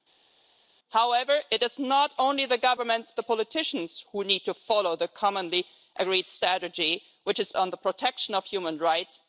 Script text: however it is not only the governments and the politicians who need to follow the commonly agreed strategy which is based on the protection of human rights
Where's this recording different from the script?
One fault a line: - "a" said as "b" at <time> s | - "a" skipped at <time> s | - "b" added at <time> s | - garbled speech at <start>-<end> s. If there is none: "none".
- "and" skipped at 3.1 s
- "based" skipped at 7.5 s